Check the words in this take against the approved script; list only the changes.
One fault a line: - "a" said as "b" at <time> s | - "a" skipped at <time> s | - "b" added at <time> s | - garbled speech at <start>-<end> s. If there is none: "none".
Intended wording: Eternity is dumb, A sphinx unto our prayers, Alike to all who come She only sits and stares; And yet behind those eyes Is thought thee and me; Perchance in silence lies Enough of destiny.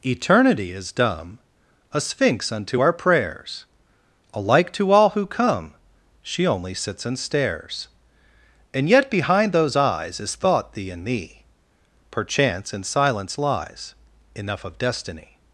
none